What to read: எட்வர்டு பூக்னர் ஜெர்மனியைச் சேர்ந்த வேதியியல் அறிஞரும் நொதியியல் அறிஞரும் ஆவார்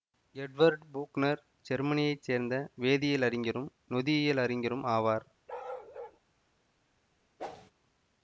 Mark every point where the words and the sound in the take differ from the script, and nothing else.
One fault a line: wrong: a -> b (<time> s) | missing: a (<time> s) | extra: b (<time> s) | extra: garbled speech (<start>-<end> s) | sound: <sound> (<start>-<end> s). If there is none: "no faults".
sound: bark (5.5-6.2 s)
sound: whoosh (7.4-7.7 s)